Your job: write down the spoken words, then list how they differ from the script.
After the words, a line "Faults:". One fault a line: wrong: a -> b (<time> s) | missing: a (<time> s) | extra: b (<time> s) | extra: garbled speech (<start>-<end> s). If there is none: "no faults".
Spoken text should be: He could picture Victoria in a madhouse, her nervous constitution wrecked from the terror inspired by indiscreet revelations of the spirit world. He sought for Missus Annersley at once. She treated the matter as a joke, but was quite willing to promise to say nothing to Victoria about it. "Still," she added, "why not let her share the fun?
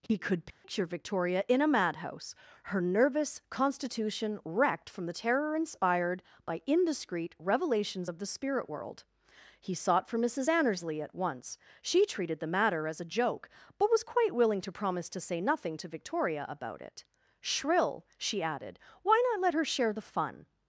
He could picture Victoria in a madhouse, her nervous constitution wrecked from the terror inspired by indiscreet revelations of the spirit world. He sought for Missus Annersley at once. She treated the matter as a joke, but was quite willing to promise to say nothing to Victoria about it. "Shrill," she added, "why not let her share the fun?
Faults:
wrong: Still -> Shrill (17.4 s)